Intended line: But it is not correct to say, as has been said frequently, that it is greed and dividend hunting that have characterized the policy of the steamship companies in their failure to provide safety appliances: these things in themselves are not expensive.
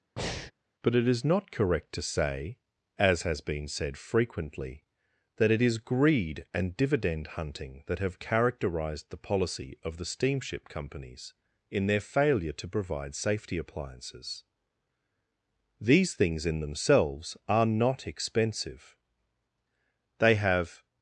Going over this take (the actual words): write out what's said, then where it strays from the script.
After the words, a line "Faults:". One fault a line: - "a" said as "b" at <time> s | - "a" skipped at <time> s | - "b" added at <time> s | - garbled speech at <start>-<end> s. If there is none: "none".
But it is not correct to say, as has been said frequently, that it is greed and dividend hunting that have characterized the policy of the steamship companies in their failure to provide safety appliances: these things in themselves are not expensive. They have
Faults:
- "They have" added at 20.2 s